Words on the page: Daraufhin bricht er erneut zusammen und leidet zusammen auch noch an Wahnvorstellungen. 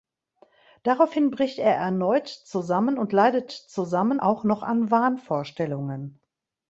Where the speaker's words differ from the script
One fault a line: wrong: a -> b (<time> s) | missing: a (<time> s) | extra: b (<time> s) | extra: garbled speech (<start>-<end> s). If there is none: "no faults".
no faults